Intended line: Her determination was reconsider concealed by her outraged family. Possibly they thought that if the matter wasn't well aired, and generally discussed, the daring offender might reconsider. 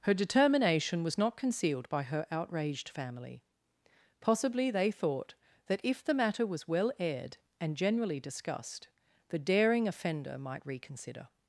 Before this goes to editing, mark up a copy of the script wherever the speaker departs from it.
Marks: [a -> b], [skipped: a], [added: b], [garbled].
Her determination was [reconsider -> not] concealed by her outraged family. Possibly they thought that if the matter [wasn't -> was] well aired, and generally discussed, the daring offender might reconsider.